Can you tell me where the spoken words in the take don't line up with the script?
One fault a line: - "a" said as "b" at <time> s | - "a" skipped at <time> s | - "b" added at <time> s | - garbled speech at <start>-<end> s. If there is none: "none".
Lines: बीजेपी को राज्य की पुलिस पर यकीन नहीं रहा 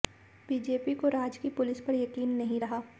none